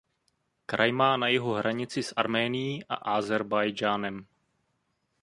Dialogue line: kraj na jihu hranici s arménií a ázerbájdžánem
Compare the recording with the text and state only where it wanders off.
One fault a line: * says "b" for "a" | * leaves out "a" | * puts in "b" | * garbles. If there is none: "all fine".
* puts in "má"